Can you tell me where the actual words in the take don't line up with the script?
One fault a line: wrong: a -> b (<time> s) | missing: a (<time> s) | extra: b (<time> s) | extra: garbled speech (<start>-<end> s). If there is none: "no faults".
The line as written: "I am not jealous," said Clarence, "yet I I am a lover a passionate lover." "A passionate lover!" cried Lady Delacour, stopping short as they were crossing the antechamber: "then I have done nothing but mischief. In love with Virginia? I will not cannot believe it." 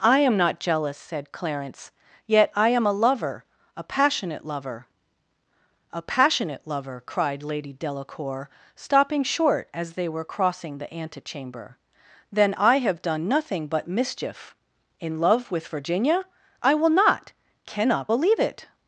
missing: I (2.7 s)